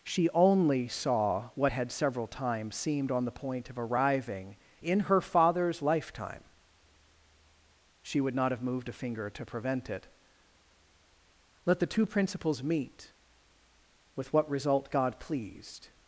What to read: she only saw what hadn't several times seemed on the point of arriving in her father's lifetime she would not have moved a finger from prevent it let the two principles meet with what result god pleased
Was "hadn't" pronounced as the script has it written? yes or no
no